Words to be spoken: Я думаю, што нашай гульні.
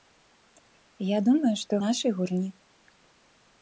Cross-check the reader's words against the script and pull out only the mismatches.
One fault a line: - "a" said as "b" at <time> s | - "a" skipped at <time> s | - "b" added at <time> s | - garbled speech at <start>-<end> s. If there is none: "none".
none